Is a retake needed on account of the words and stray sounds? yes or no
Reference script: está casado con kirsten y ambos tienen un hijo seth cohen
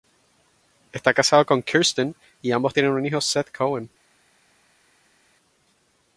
no